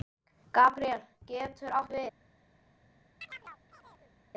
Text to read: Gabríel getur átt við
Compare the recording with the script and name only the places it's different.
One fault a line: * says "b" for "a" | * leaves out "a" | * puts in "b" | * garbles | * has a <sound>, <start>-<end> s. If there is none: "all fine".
* has a chirp, 3.2-4.2 s